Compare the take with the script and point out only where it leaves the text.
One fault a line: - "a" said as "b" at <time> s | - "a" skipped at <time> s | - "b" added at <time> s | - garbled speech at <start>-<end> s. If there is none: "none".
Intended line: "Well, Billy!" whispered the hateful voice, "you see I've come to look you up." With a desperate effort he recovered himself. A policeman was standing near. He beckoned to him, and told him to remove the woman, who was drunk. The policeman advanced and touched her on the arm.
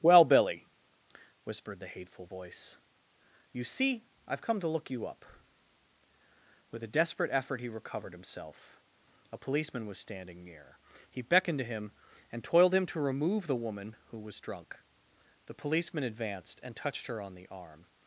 - "told" said as "toiled" at 12.4 s